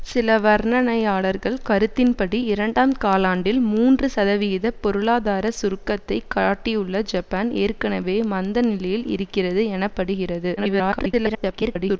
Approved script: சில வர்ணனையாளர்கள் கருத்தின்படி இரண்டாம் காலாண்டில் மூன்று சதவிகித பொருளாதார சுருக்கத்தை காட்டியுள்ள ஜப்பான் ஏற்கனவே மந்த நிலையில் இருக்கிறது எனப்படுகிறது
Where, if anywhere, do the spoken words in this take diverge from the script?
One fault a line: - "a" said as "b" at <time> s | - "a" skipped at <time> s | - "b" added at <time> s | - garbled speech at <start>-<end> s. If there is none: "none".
- garbled speech at 10.6-12.0 s